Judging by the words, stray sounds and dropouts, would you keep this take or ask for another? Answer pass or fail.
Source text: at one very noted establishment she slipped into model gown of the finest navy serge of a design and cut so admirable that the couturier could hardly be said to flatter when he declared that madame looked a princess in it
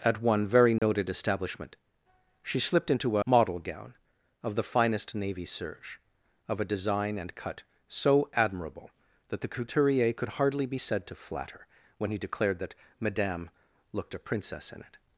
fail